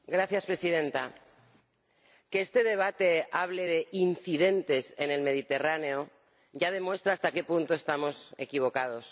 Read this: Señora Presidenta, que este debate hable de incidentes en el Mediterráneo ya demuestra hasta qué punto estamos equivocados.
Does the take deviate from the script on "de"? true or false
false